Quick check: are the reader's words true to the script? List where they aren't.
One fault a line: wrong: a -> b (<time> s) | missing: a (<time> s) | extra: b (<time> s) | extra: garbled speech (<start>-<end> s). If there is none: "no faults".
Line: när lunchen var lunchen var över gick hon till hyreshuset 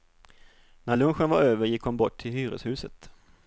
missing: lunchen var (1.4 s)
extra: bort (2.0 s)